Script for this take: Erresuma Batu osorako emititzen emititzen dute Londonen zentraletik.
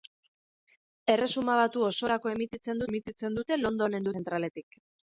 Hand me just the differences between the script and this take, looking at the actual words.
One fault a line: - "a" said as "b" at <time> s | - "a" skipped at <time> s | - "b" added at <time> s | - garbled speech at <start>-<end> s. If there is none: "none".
none